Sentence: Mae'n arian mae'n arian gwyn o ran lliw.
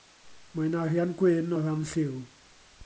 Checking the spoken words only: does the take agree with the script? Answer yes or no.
no